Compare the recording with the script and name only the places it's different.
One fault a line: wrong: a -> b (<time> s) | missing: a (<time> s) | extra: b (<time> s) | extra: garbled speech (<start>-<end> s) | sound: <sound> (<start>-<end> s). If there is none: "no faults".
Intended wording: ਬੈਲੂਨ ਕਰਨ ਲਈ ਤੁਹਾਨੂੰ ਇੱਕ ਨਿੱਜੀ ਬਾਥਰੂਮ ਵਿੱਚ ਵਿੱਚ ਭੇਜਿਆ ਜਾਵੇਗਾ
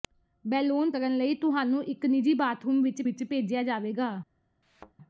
sound: thud (4.6-4.9 s)